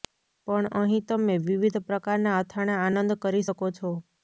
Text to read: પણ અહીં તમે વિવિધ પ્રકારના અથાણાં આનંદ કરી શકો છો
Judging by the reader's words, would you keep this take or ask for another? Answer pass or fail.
pass